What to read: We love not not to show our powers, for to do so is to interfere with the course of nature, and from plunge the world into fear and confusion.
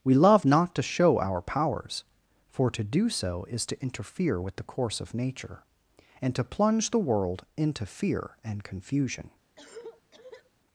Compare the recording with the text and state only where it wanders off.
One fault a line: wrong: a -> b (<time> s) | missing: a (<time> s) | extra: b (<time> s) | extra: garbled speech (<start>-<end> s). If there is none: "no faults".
missing: not (0.7 s)
wrong: from -> to (6.3 s)